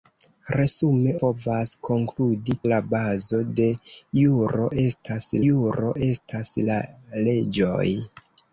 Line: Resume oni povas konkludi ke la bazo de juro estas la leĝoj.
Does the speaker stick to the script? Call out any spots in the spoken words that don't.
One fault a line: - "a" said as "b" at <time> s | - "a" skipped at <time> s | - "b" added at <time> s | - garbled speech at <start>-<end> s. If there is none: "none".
- "oni" skipped at 1.1 s
- "ke" skipped at 2.6 s
- "juro estas" added at 5.5 s